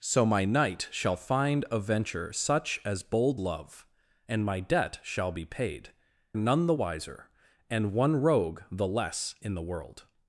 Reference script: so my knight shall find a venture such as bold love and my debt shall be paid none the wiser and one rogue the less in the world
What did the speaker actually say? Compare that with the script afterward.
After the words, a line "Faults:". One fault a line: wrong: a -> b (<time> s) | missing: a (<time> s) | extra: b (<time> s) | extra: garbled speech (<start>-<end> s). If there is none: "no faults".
so my knight shall find a venture such as bold love and my debt shall be paid none the wiser and one rogue the less in the world
Faults:
no faults